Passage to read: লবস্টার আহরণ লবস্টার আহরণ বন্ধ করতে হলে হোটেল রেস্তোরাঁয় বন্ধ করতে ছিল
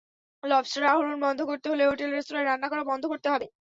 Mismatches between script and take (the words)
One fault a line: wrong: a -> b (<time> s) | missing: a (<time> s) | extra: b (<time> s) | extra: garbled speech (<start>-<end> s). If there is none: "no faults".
missing: লবস্টার আহরণ (1.1 s)
extra: রান্না করা (2.5 s)
wrong: ছিল -> হবে (3.3 s)